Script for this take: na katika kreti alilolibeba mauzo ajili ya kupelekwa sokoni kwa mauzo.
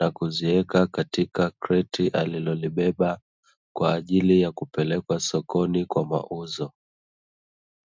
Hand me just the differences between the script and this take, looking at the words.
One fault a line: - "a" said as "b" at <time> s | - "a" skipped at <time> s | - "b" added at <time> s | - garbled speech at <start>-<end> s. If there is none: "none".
- "kuziweka" added at 0.1 s
- "mauzo" said as "kwa" at 3.8 s